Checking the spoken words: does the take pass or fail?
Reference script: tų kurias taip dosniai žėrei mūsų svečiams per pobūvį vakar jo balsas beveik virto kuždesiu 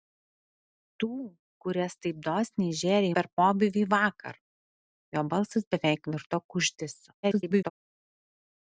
fail